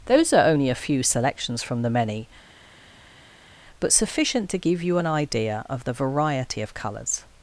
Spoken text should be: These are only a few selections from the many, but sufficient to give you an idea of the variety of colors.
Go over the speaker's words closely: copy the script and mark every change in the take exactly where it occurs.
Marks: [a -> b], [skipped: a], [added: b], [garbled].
[These -> Those] are only a few selections from the many, but sufficient to give you an idea of the variety of colors.